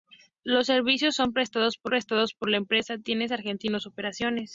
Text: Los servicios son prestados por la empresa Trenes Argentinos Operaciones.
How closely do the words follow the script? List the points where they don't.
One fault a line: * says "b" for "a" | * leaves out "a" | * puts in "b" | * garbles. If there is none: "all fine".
* puts in "prestados por"